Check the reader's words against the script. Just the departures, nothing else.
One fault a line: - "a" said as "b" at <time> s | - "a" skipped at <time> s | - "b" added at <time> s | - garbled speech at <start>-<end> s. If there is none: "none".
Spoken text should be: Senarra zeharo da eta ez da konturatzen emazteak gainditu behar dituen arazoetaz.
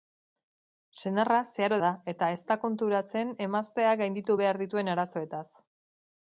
none